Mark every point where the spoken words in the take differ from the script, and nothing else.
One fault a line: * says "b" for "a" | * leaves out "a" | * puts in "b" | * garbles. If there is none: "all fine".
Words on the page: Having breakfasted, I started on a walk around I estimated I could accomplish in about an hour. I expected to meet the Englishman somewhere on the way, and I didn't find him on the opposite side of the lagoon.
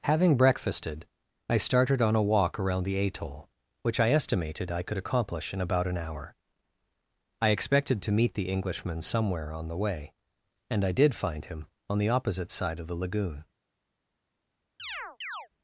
* puts in "the atoll which"
* says "did" for "didn't"